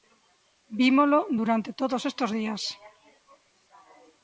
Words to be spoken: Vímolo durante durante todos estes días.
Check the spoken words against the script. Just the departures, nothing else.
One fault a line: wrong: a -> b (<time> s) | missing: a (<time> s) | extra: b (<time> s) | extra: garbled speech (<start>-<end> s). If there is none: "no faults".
missing: durante (1.7 s)